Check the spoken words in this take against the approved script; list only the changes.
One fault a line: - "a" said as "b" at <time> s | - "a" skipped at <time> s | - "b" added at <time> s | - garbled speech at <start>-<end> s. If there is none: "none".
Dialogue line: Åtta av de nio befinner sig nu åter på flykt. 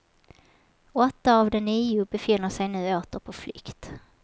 none